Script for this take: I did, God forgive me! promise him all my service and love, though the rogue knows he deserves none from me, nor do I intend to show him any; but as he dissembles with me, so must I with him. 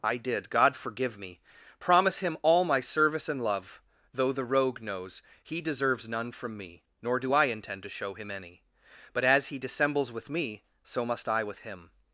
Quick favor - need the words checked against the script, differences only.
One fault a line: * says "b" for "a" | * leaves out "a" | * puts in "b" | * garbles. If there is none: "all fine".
all fine